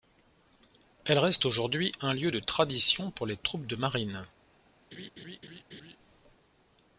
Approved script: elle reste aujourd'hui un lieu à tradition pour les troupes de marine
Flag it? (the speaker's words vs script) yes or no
yes